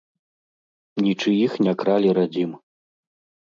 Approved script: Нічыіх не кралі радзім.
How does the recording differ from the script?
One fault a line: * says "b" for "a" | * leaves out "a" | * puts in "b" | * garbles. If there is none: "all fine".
all fine